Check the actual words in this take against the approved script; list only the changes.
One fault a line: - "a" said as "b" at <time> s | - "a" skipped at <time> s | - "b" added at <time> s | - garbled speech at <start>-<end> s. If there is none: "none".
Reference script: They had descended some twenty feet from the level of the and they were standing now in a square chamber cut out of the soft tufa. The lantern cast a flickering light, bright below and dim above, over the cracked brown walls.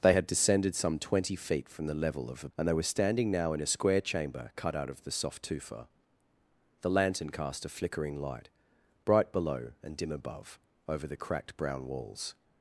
none